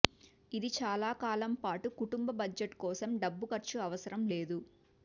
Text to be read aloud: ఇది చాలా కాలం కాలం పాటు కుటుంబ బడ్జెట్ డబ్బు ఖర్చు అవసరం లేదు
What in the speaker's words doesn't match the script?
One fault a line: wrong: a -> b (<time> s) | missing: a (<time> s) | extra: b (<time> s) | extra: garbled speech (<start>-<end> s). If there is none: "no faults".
missing: కాలం (1.5 s)
extra: కోసం (2.8 s)